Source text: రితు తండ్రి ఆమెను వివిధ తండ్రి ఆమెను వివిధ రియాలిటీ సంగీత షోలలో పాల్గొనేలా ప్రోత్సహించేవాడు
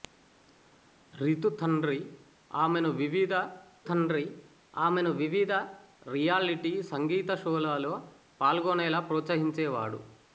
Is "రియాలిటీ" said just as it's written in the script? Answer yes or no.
yes